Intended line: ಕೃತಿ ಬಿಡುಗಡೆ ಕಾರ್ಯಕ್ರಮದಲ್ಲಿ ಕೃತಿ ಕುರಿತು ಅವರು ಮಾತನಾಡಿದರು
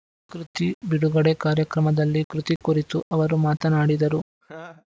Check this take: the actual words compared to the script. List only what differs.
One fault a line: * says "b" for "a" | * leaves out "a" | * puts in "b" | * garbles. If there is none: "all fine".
all fine